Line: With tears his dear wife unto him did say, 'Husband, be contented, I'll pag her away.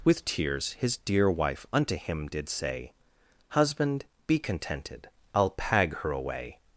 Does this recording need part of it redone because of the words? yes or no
no